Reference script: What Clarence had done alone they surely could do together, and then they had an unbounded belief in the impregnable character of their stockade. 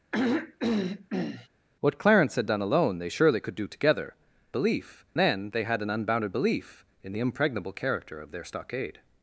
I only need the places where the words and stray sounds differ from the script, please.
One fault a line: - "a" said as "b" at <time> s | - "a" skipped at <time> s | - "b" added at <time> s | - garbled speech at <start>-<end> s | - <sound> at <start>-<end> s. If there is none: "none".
- throat clearing at 0.1-1.5 s
- "and" said as "belief" at 4.5 s